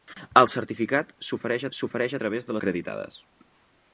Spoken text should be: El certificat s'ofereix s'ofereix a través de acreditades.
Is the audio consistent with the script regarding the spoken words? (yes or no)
yes